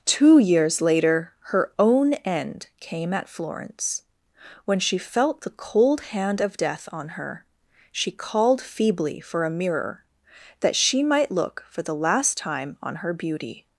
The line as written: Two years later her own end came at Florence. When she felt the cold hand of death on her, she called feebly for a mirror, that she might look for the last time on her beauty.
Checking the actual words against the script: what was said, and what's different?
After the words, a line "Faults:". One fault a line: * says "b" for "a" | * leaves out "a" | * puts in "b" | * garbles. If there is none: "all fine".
Two years later her own end came at Florence. When she felt the cold hand of death on her, she called feebly for a mirror, that she might look for the last time on her beauty.
Faults:
all fine